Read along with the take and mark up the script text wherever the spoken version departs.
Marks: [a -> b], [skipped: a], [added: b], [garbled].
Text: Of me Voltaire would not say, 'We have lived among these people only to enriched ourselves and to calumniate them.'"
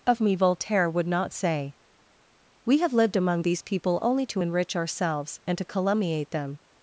Of me Voltaire would not say, 'We have lived among these people only to [enriched -> enrich] ourselves and to calumniate them.'"